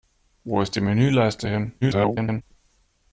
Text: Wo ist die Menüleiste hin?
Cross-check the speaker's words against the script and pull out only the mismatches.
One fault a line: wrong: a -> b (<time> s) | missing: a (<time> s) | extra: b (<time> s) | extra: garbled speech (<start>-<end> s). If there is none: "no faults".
extra: garbled speech (1.8-2.4 s)